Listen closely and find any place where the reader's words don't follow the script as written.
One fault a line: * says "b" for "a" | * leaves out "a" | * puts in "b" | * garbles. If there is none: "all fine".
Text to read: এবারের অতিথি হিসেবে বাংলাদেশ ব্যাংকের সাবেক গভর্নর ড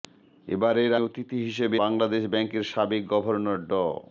all fine